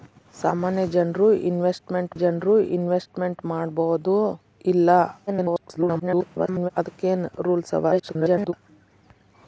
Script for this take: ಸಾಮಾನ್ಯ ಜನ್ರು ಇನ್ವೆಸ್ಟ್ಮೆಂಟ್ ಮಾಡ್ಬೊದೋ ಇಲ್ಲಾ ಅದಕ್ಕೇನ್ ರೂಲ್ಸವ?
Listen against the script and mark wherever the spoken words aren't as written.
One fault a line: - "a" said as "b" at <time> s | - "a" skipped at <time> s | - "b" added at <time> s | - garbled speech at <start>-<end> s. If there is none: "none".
- "ಜನ್ರು ಇನ್ವೆಸ್ಟ್ಮೆಂಟ್" added at 2.1 s
- garbled speech at 5.3-6.7 s
- garbled speech at 7.9-8.5 s